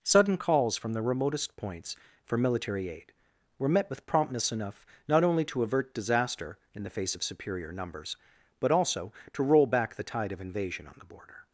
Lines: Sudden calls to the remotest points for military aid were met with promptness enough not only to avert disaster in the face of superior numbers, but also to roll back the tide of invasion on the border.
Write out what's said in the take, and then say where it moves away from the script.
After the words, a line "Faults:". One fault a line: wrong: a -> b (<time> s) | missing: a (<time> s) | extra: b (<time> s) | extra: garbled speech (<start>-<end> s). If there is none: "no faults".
Sudden calls from the remotest points for military aid were met with promptness enough not only to avert disaster in the face of superior numbers, but also to roll back the tide of invasion on the border.
Faults:
wrong: to -> from (0.8 s)